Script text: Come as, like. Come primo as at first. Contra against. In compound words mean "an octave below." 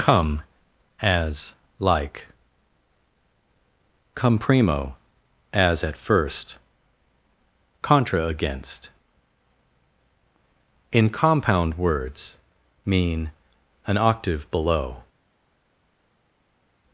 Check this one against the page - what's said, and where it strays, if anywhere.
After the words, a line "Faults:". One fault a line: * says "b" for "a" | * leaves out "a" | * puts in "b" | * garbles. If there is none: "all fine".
Come as, like. Come primo as at first. Contra against. In compound words mean "an octave below."
Faults:
all fine